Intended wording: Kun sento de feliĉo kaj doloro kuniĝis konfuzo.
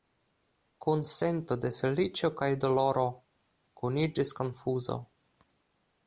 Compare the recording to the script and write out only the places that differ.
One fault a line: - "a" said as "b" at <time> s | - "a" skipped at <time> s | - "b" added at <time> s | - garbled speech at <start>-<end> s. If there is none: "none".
none